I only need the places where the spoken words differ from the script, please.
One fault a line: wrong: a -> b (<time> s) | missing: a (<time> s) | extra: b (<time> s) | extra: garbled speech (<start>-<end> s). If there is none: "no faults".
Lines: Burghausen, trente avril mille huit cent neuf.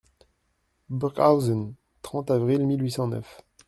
no faults